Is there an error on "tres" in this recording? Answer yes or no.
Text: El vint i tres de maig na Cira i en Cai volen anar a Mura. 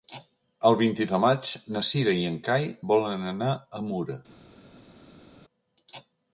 yes